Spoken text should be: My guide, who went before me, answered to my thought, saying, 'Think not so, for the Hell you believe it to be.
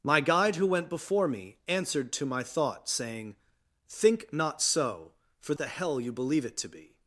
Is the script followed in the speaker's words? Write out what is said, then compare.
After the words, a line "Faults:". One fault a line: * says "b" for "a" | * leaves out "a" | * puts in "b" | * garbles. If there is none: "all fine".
My guide, who went before me, answered to my thought, saying, 'Think not so, for the Hell you believe it to be.
Faults:
all fine